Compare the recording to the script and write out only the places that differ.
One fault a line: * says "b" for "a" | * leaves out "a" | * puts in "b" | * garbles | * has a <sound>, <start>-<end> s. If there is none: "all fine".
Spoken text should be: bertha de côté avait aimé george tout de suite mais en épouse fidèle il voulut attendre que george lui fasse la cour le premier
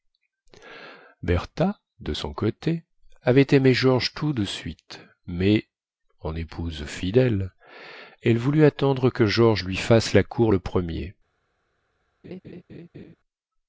* puts in "son"
* says "elle" for "il"
* has a laugh, 12.2-13.2 s